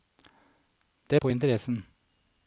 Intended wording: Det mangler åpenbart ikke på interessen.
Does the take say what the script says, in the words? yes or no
no